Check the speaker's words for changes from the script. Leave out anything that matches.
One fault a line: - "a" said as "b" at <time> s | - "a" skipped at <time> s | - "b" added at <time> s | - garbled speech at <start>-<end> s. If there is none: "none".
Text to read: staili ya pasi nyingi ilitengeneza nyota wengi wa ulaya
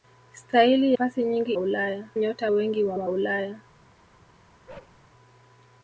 - "ya" skipped at 0.9 s
- "ilitengeneza" said as "ulaya" at 1.6 s
- "wa" added at 2.9 s